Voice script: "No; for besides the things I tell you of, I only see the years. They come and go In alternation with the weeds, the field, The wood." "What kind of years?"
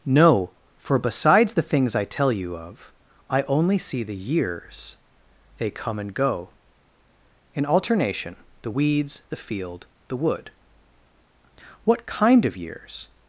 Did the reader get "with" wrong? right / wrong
wrong